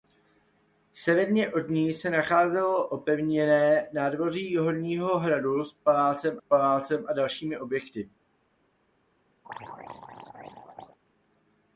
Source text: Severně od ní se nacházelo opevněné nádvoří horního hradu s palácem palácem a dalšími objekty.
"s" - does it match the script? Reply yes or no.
yes